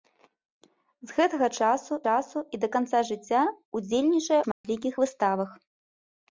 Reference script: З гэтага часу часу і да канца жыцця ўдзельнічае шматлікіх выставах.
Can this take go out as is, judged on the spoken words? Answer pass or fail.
pass